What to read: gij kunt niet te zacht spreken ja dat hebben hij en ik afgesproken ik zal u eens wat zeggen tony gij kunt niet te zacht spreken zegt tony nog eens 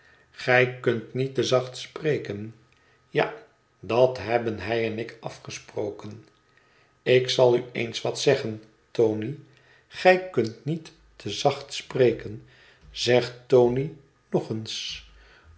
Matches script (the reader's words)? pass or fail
pass